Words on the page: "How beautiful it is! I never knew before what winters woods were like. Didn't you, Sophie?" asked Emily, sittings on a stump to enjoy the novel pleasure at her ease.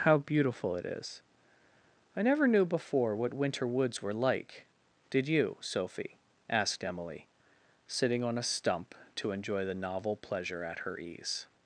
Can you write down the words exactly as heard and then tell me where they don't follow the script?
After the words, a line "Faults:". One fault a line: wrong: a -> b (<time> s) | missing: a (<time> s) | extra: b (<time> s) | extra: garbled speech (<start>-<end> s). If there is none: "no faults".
"How beautiful it is! I never knew before what winter woods were like. Did you, Sophie?" asked Emily, sitting on a stump to enjoy the novel pleasure at her ease.
Faults:
wrong: winters -> winter (3.4 s)
wrong: Didn't -> Did (5.1 s)
wrong: sittings -> sitting (7.8 s)